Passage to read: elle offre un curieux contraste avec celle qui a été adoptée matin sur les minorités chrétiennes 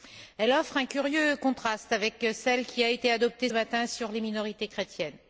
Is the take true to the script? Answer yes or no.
yes